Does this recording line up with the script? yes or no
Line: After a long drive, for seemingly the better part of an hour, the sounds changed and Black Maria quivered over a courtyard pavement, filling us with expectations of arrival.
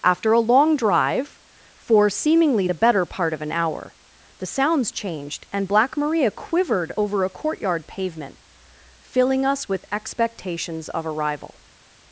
yes